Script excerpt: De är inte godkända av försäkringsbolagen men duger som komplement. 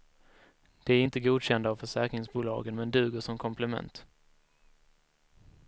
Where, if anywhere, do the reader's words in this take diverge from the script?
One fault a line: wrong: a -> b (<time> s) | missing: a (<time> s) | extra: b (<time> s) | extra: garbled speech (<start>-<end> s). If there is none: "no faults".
no faults